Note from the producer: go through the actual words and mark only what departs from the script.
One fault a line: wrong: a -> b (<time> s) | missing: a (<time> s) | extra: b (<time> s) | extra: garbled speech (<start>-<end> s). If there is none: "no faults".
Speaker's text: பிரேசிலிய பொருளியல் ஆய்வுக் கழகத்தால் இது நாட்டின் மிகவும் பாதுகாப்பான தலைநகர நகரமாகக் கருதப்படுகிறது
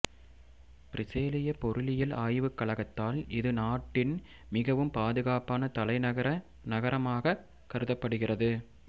no faults